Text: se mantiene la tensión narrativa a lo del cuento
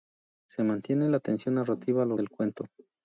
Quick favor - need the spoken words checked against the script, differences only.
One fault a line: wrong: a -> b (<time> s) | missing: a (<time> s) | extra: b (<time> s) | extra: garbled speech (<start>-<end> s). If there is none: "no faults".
no faults